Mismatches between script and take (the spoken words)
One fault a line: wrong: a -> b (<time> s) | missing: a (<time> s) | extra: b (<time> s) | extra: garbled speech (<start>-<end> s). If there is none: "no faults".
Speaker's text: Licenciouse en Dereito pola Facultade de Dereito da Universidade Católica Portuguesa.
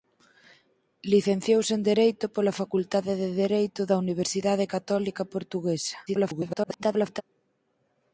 extra: garbled speech (6.1-7.2 s)